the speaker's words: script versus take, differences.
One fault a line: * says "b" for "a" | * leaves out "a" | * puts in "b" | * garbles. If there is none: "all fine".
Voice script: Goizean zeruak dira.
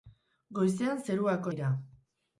all fine